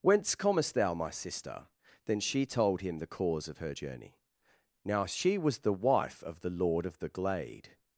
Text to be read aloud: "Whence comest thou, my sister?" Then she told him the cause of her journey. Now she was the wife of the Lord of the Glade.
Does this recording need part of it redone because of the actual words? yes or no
no